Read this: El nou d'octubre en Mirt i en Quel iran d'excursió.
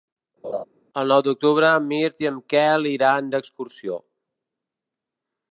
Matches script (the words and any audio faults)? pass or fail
fail